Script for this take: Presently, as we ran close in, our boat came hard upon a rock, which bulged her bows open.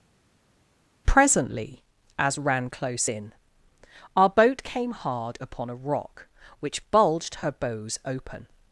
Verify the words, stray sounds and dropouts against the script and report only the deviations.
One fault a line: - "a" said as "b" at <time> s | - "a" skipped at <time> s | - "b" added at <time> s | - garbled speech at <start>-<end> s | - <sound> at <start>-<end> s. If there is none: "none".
- "we" skipped at 2.4 s